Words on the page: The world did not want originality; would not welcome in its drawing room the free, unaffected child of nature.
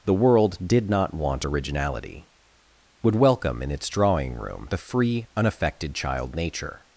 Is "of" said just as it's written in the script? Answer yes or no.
no